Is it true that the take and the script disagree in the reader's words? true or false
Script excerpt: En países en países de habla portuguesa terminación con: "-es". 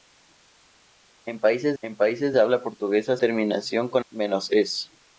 false